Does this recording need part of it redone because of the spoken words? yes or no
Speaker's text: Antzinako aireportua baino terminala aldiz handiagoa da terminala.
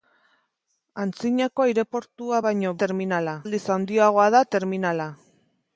no